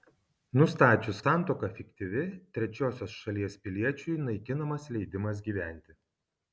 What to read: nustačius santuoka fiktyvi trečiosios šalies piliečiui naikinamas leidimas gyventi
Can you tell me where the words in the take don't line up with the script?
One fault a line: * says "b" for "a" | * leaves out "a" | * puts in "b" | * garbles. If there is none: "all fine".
all fine